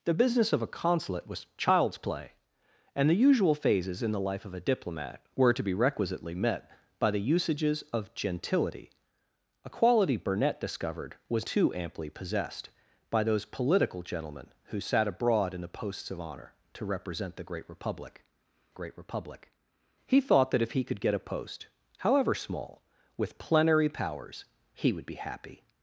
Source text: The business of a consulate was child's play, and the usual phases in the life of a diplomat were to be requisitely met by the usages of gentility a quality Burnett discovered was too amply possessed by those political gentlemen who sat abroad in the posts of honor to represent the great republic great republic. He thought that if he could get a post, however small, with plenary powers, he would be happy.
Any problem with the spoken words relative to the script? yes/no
no